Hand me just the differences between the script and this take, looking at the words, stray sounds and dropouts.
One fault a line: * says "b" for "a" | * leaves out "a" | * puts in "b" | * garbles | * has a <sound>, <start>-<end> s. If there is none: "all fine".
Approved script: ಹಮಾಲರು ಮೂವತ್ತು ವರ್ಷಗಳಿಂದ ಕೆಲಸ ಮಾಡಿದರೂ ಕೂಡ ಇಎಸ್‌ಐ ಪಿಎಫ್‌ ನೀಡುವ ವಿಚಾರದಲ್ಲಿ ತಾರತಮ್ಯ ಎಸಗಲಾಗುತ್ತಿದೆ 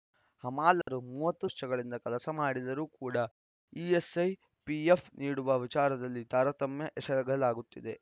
* has a dropout, 0.8-0.9 s